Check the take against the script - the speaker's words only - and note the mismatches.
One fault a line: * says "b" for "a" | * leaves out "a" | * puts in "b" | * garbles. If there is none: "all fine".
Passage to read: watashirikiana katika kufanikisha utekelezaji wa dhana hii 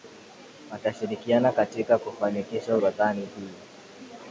* leaves out "utekelezaji"